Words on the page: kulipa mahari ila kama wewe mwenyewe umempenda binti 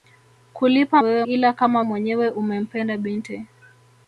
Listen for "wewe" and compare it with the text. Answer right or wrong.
wrong